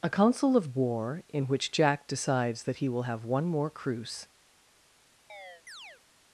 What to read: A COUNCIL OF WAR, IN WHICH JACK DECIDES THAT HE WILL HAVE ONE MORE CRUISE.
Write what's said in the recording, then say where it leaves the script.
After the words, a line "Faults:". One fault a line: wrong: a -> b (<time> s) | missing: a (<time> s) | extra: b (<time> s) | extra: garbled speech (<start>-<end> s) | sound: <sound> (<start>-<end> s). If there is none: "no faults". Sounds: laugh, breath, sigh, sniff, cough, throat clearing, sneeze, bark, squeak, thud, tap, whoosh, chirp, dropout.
A COUNCIL OF WAR, IN WHICH JACK DECIDES THAT HE WILL HAVE ONE MORE CRUISE.
Faults:
sound: chirp (5.3-6.0 s)